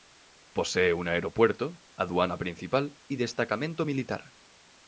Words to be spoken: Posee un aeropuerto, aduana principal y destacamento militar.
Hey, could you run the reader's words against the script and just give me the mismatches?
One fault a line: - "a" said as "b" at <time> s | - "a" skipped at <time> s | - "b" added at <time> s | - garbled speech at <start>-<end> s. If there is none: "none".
none